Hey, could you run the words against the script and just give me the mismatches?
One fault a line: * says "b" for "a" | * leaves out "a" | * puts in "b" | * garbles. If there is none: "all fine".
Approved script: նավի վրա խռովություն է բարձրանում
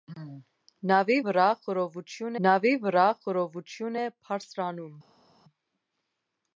* puts in "նավի վրա խռովություն"